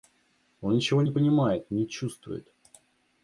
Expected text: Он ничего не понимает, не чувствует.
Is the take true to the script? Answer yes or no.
yes